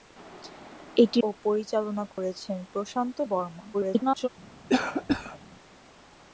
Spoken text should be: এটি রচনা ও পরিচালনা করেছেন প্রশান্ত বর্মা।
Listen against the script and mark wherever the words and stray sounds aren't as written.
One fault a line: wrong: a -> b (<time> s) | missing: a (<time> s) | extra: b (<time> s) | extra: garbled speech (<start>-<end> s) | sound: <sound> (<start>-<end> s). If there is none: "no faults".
missing: রচনা (1.2 s)
sound: dropout (2.1-2.2 s)
extra: garbled speech (3.7-4.3 s)
sound: cough (4.7-5.4 s)